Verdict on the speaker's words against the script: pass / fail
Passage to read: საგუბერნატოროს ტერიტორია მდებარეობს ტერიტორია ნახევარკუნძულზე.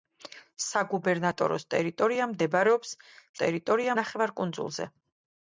pass